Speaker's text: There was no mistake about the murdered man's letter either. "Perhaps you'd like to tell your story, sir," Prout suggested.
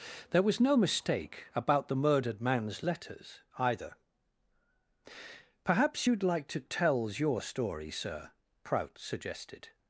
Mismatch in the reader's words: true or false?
true